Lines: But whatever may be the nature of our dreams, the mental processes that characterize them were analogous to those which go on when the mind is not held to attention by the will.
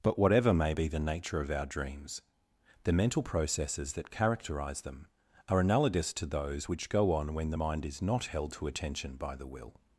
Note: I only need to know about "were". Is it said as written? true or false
false